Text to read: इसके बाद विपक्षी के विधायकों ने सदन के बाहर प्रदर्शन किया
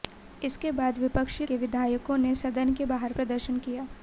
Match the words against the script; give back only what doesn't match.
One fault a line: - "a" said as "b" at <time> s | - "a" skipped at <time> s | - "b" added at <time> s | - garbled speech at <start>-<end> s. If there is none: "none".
none